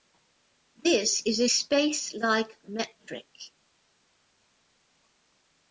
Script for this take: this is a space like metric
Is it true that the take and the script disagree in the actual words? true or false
false